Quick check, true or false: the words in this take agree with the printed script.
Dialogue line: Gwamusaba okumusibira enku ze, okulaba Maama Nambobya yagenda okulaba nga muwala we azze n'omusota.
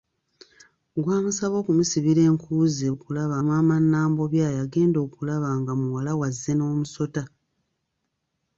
true